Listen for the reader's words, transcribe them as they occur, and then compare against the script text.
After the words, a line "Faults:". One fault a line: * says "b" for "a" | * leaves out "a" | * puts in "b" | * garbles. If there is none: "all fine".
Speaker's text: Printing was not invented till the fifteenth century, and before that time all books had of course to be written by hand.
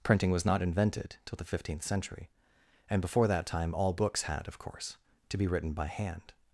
Printing was not invented till the fifteenth century, and before that time all books had of course to be written by hand.
Faults:
all fine